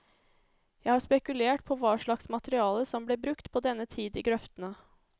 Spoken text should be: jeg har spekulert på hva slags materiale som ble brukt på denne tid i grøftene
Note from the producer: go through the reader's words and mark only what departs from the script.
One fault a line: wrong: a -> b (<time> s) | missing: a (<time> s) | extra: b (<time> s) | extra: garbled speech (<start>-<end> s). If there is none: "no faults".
no faults